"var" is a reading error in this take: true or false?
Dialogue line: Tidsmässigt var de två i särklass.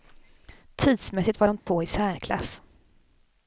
false